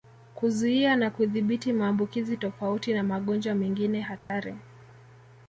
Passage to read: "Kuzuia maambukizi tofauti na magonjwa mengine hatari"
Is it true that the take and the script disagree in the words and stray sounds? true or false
true